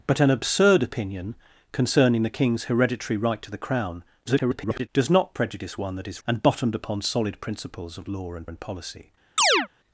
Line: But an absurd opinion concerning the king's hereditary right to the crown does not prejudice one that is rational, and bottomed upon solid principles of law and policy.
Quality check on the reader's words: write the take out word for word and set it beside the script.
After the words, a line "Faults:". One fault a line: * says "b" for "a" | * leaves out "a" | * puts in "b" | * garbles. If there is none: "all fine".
But an absurd opinion concerning the king's hereditary right to the crown [garbled] does not prejudice one that is and bottomed upon solid principles of law and and policy.
Faults:
* garbles
* leaves out "rational"
* puts in "and"